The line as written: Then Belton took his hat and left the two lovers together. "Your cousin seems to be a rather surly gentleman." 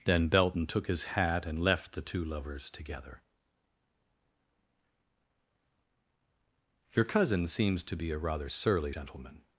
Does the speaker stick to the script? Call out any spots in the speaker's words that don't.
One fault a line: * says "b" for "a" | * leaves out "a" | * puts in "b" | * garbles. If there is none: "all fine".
all fine